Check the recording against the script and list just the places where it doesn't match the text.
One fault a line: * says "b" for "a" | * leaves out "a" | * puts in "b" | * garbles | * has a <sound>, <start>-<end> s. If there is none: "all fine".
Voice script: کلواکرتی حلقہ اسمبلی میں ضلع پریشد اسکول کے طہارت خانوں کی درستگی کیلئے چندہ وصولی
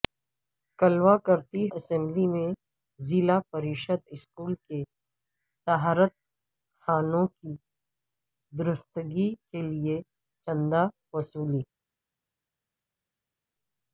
* leaves out "حلقہ"